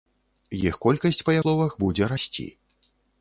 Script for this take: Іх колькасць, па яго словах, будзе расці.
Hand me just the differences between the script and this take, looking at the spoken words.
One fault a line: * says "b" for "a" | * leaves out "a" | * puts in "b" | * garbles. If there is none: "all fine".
* leaves out "яго"